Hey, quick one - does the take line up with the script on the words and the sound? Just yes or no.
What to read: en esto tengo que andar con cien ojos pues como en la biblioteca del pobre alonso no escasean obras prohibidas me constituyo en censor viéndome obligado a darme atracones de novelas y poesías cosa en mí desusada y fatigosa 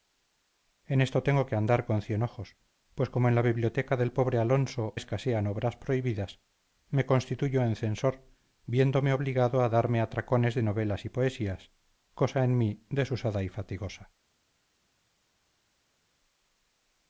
no